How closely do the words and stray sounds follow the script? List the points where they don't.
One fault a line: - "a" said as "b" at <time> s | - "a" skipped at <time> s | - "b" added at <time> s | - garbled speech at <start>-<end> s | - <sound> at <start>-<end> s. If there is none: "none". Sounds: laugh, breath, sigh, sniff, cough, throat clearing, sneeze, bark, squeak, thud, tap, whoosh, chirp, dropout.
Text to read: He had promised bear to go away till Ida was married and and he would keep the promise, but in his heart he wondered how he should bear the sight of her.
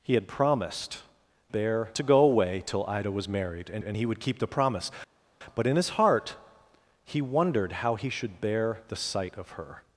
none